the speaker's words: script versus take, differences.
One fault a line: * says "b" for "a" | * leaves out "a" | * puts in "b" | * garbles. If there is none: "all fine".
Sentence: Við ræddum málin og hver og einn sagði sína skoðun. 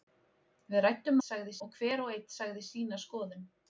* says "sagði" for "málin"